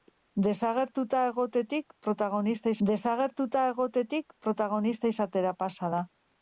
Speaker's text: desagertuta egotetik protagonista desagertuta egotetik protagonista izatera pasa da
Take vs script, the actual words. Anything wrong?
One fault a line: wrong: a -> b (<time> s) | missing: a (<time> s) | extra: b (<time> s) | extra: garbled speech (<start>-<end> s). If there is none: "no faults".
no faults